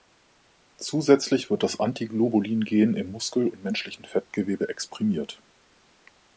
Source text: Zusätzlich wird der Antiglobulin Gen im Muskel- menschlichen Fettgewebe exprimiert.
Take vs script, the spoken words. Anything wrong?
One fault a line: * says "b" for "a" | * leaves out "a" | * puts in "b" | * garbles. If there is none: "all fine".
* says "das" for "der"
* puts in "und"